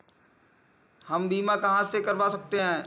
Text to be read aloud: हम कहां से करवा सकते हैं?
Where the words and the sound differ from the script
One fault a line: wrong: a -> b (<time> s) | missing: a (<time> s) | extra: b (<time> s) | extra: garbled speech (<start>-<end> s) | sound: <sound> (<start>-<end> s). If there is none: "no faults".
extra: बीमा (1.3 s)